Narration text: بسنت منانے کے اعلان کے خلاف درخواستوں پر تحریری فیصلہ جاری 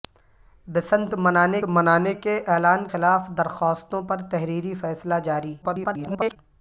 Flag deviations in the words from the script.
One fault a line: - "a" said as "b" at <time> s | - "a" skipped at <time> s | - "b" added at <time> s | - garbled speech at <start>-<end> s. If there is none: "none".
- "منانے" added at 1.7 s
- "کے" skipped at 2.8 s
- garbled speech at 5.6-6.4 s